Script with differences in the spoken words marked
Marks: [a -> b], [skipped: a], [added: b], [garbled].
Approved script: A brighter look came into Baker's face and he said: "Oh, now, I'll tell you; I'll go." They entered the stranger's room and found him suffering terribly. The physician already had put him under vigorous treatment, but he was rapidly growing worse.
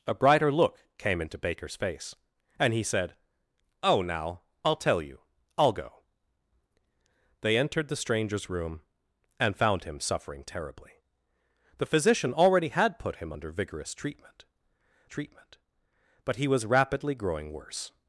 A brighter look came into Baker's face and he said: "Oh, now, I'll tell you; I'll go." They entered the stranger's room and found him suffering terribly. The physician already had put him under vigorous treatment, [added: treatment] but he was rapidly growing worse.